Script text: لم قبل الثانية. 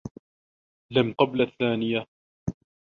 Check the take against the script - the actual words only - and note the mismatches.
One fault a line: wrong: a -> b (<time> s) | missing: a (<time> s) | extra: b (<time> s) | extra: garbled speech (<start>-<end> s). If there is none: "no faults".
no faults